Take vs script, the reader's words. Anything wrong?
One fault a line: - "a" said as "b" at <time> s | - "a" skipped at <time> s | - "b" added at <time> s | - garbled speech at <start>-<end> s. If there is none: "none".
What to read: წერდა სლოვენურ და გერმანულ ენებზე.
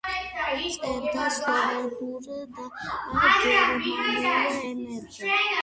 none